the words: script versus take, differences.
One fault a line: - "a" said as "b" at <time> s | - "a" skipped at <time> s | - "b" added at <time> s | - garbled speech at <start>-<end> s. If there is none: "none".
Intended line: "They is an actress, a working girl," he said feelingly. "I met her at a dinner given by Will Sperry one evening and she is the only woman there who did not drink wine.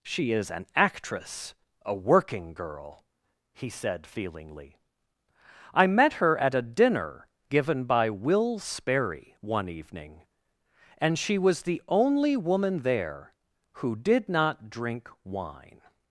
- "They" said as "She" at 0.0 s
- "is" said as "was" at 11.4 s